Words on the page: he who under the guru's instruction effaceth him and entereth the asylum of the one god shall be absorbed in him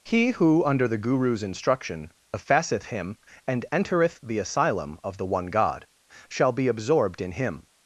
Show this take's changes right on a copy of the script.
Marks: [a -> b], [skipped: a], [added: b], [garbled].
he who under the guru's instruction effaceth him and entereth the asylum of the one god shall be absorbed in him